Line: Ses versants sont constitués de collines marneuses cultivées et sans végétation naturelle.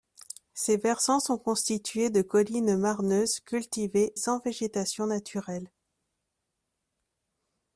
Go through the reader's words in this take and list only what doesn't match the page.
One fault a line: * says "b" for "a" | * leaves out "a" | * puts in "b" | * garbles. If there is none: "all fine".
* leaves out "et"